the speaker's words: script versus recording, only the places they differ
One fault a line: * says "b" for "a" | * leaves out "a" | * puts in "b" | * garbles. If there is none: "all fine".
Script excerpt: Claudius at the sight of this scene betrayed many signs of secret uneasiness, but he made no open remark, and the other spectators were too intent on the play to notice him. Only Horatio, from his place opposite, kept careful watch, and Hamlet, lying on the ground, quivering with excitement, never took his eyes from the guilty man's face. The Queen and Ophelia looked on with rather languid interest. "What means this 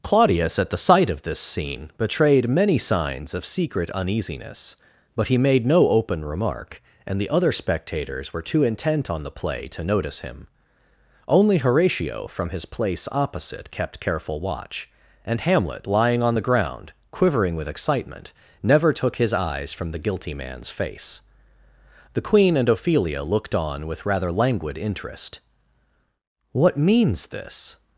all fine